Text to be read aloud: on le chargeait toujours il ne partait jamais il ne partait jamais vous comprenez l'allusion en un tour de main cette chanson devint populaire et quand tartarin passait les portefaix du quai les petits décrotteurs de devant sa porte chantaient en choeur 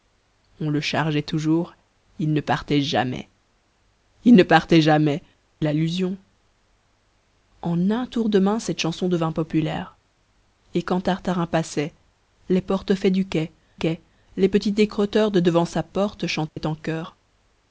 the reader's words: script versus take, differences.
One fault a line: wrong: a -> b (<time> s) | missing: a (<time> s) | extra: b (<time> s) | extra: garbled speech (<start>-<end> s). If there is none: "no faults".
missing: vous comprenez (5.2 s)
extra: quai (13.7 s)